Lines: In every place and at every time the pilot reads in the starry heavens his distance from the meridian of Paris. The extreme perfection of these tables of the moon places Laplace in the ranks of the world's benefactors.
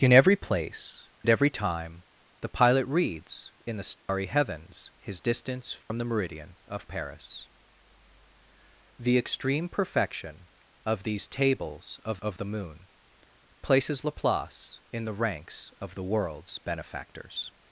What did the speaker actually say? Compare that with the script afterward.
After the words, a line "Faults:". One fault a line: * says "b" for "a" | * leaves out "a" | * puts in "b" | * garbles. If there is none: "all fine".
In every place at every time the pilot reads in the starry heavens his distance from the meridian of Paris. The extreme perfection of these tables of of the moon places Laplace in the ranks of the world's benefactors.
Faults:
* leaves out "and"
* puts in "of"